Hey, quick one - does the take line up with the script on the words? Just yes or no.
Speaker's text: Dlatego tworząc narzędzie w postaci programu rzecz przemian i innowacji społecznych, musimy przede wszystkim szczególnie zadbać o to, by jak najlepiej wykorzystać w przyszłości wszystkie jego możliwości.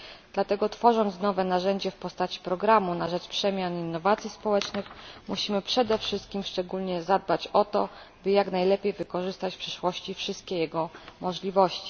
no